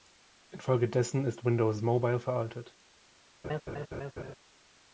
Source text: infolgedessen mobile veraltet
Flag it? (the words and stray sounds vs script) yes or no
yes